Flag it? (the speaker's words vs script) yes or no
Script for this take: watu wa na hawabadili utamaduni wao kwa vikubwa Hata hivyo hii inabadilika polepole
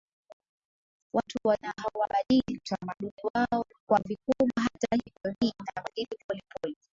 no